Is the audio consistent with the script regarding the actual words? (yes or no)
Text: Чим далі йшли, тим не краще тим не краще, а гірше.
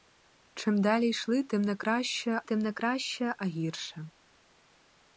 yes